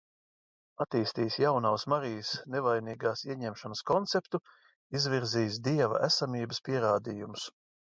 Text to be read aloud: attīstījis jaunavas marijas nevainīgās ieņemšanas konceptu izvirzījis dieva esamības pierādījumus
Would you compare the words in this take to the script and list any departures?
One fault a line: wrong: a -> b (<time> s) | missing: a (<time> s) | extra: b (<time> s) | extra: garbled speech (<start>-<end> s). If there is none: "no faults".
no faults